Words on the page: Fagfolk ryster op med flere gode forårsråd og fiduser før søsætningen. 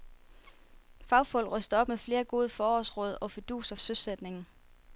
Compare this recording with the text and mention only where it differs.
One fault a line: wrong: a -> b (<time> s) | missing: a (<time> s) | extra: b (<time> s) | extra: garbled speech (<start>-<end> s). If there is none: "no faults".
missing: før (3.8 s)